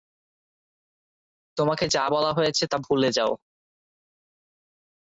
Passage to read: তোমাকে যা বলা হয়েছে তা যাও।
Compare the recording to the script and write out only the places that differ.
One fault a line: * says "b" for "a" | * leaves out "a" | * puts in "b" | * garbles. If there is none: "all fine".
* puts in "ভুলে"